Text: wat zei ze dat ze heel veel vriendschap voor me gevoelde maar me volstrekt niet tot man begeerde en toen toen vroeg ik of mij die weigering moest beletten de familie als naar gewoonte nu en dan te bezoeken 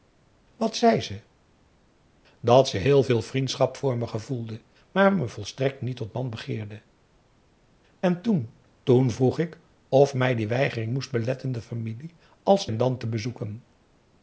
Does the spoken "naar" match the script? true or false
false